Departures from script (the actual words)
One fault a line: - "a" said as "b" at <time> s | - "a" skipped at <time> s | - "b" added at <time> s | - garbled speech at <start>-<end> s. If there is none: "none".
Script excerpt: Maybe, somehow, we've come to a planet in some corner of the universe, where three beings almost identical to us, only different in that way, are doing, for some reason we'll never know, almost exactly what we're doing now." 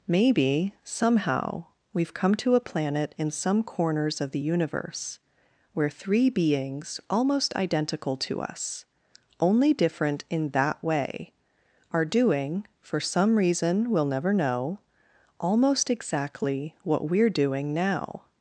- "corner" said as "corners" at 3.6 s